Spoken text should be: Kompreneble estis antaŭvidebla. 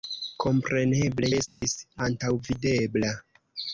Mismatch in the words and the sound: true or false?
true